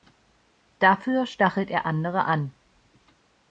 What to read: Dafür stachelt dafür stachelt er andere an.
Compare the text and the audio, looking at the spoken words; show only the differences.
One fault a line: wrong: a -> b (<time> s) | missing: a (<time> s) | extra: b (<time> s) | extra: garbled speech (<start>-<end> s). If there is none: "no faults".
missing: dafür stachelt (1.7 s)